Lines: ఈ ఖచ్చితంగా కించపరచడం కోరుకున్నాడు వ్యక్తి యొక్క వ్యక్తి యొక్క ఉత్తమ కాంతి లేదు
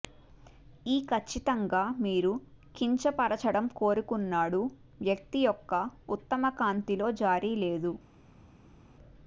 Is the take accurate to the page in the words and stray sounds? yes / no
no